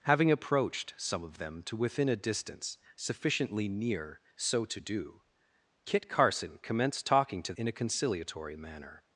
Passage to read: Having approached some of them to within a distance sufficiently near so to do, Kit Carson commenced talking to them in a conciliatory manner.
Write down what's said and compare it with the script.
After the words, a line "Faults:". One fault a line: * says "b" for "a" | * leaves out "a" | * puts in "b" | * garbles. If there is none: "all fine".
Having approached some of them to within a distance sufficiently near so to do, Kit Carson commenced talking to in a conciliatory manner.
Faults:
* leaves out "them"